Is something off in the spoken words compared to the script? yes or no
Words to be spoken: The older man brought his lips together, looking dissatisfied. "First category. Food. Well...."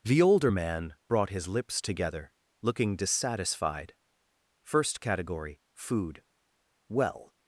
no